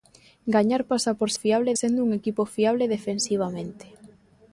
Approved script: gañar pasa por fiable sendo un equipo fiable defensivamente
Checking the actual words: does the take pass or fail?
pass